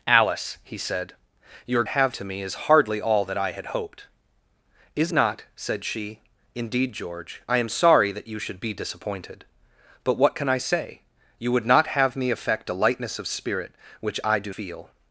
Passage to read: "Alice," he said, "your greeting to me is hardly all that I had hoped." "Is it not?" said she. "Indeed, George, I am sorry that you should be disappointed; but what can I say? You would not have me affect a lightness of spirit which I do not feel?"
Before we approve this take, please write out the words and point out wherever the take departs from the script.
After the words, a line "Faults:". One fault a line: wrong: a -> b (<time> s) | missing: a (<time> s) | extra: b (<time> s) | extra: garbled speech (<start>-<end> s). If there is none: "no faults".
"Alice," he said, "your have to me is hardly all that I had hoped." "Is not?" said she. "Indeed, George, I am sorry that you should be disappointed; but what can I say? You would not have me affect a lightness of spirit which I do feel?"
Faults:
wrong: greeting -> have (1.9 s)
missing: it (5.1 s)
missing: not (14.5 s)